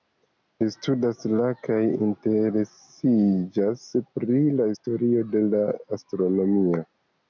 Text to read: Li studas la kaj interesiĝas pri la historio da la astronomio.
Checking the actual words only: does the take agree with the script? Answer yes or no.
no